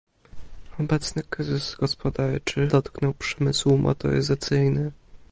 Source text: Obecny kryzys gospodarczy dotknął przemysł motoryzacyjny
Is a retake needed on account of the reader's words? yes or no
no